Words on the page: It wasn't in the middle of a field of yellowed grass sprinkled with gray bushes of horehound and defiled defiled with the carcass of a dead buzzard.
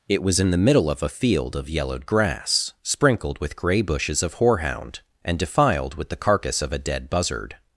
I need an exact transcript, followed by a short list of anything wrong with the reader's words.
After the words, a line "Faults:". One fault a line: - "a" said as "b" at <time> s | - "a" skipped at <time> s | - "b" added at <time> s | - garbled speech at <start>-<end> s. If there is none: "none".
It was in the middle of a field of yellowed grass sprinkled with gray bushes of horehound and defiled with the carcass of a dead buzzard.
Faults:
- "wasn't" said as "was" at 0.2 s
- "defiled" skipped at 6.0 s